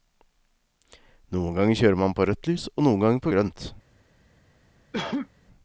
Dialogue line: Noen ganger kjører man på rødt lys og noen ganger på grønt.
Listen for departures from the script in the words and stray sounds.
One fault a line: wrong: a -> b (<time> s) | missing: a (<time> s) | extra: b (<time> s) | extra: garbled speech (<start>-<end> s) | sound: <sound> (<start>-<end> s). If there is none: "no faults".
sound: cough (4.9-5.3 s)